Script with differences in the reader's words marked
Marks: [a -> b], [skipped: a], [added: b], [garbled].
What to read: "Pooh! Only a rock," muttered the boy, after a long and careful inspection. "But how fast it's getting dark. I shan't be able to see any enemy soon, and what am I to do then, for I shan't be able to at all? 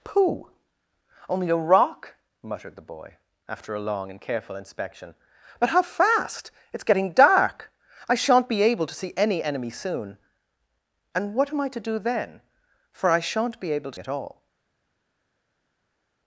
"Pooh! Only a rock," muttered the boy, after a long and careful inspection. "But how fast it's getting dark. I shan't be able to see any enemy soon, and what am I to do then, for I shan't be able to at all?